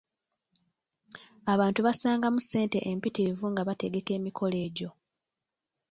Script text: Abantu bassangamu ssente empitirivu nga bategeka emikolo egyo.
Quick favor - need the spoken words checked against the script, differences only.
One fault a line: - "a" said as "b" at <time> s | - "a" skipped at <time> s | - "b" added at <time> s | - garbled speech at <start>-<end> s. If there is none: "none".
none